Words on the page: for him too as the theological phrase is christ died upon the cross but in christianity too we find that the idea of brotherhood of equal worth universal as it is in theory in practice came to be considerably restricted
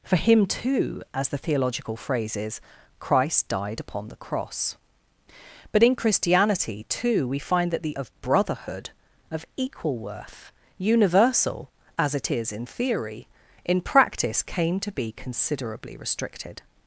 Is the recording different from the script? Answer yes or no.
yes